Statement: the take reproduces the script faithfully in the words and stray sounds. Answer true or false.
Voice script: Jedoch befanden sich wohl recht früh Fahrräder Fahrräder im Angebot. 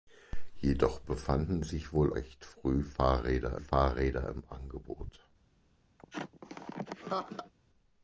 false